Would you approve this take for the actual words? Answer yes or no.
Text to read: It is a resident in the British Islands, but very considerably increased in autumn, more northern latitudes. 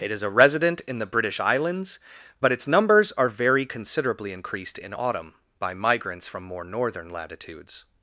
no